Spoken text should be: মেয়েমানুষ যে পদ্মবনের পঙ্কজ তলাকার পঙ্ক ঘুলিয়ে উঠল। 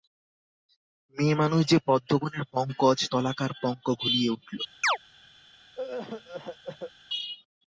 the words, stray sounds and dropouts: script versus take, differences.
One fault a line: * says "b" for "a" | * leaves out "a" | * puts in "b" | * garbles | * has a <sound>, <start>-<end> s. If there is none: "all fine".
* has a chirp, 4.8-5.0 s
* has a cough, 5.7-6.9 s